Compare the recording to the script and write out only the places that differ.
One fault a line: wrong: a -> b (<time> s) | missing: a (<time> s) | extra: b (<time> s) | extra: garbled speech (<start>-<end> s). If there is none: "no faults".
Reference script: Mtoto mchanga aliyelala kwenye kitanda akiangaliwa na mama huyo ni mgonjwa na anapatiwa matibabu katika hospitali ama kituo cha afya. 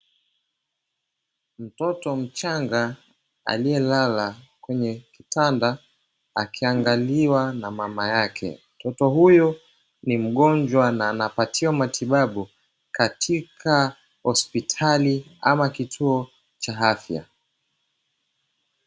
extra: yake Mtoto (8.1 s)